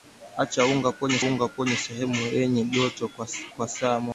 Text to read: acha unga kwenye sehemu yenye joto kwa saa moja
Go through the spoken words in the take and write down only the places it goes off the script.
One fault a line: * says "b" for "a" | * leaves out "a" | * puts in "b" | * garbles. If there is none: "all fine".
* puts in "unga kwenye"